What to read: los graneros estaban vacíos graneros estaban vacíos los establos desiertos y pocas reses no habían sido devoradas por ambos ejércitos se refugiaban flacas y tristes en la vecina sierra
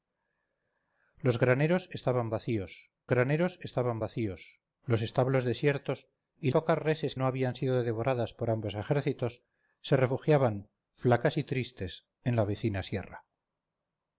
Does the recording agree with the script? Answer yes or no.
yes